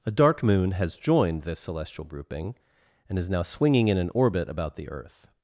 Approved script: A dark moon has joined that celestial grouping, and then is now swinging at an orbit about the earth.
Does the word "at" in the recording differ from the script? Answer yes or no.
yes